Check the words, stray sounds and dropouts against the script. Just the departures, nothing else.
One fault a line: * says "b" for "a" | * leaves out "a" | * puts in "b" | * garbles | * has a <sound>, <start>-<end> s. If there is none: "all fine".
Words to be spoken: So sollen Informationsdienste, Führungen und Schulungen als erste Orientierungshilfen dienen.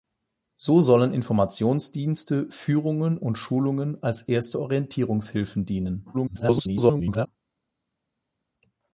* garbles